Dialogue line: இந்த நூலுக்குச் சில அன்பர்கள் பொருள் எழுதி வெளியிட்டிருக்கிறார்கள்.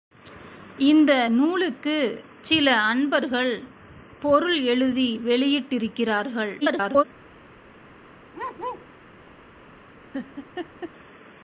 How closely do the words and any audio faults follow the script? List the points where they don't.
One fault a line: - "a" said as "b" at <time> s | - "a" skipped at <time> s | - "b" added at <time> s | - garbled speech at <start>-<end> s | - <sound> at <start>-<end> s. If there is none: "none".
- garbled speech at 6.6-7.0 s
- bark at 8.3-8.9 s
- laugh at 10.1-10.9 s